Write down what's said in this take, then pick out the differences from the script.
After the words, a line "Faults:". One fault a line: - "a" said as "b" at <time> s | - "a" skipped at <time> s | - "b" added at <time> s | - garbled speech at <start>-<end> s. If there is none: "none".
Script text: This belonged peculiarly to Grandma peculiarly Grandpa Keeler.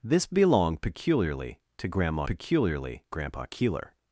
This belonged peculiarly to Grandma peculiarly Grandpa Keeler.
Faults:
none